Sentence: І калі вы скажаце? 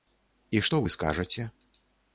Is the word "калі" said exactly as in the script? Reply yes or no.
no